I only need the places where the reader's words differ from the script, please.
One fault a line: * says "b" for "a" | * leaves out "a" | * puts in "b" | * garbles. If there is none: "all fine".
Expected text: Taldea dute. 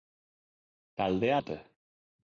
all fine